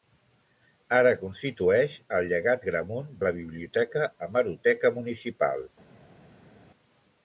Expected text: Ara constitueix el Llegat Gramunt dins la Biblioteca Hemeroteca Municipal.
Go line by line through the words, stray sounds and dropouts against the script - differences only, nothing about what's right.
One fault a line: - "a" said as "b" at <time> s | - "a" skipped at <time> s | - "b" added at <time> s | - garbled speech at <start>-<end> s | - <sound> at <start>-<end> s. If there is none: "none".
- "dins" skipped at 3.1 s